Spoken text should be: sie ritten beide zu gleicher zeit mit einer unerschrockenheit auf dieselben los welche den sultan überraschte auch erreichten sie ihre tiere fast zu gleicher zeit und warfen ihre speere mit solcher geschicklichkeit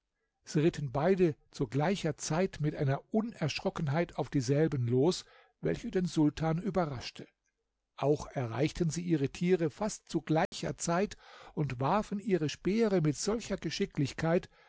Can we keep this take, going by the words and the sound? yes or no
no